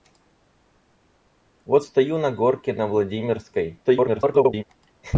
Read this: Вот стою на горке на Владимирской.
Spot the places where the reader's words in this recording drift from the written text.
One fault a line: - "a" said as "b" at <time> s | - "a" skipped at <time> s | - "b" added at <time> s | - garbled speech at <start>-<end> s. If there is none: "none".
- garbled speech at 3.8-4.6 s